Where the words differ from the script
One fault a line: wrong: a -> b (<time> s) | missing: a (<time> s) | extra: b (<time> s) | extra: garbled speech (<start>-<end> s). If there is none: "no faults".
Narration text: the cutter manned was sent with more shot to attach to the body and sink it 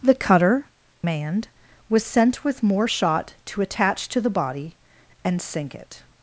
no faults